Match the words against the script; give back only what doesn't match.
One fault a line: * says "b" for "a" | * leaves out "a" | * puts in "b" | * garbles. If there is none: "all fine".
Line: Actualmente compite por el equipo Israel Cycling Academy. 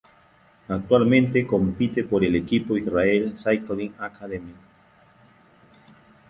all fine